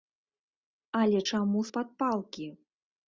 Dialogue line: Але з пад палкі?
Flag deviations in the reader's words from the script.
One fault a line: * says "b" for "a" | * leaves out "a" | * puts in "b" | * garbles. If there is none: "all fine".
* puts in "чаму"